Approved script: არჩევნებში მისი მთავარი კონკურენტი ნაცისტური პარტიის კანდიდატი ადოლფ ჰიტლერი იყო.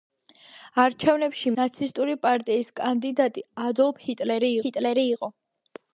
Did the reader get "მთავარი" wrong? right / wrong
wrong